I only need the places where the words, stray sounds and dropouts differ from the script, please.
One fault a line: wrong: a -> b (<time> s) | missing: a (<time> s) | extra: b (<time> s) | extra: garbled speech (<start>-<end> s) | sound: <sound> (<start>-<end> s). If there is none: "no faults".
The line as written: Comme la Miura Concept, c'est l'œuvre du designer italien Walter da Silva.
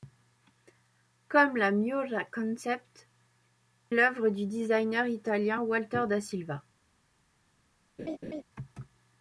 missing: c'est (3.1 s)
sound: laugh (8.0-8.4 s)